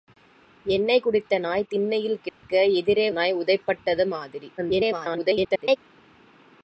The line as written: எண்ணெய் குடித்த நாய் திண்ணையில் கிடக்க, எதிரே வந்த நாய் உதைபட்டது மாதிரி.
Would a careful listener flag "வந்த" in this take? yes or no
yes